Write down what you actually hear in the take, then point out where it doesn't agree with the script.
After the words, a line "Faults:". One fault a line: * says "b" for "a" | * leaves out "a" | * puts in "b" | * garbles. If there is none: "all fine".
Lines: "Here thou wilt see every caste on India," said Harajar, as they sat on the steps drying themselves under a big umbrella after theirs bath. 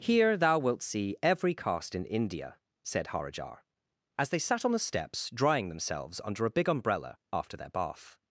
"Here thou wilt see every caste in India," said Harajar, as they sat on the steps drying themselves under a big umbrella after their bath.
Faults:
* says "in" for "on"
* says "their" for "theirs"